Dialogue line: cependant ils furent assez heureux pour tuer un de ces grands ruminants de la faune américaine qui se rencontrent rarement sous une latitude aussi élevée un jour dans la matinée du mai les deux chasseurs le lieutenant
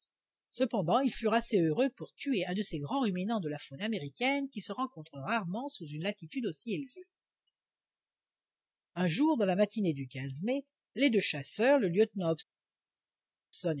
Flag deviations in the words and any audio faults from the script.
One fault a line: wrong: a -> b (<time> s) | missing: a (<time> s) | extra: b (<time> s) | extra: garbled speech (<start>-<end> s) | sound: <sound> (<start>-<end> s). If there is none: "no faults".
no faults